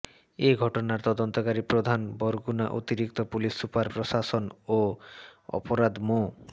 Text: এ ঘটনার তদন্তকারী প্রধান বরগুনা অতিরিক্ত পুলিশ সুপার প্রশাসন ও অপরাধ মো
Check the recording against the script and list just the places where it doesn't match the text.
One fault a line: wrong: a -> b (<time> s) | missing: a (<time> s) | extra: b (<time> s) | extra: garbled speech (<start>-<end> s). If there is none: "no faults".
no faults